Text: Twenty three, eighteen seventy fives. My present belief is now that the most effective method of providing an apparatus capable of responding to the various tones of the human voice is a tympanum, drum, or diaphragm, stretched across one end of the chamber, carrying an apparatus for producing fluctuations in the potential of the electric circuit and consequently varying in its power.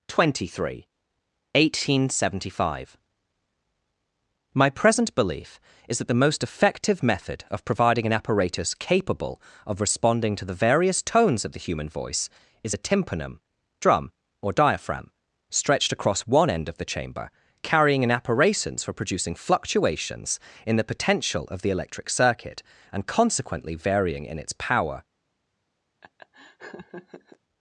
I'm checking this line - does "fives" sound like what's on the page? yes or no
no